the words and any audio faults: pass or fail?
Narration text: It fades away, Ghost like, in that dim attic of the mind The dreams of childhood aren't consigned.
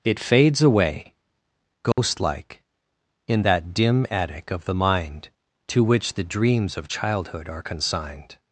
fail